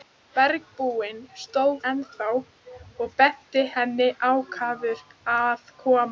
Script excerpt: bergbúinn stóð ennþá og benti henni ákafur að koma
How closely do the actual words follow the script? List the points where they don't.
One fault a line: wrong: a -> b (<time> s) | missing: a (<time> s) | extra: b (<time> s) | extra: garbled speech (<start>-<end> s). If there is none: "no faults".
no faults